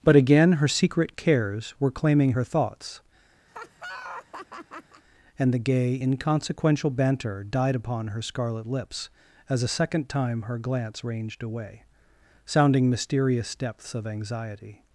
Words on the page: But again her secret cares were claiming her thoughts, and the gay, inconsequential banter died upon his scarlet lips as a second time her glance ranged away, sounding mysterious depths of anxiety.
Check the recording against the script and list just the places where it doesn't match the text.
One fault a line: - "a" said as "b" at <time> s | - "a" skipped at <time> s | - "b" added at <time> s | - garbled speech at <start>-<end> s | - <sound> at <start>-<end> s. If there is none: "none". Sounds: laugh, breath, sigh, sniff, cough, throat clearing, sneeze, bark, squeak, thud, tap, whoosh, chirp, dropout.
- laugh at 3.5-5.0 s
- "his" said as "her" at 8.1 s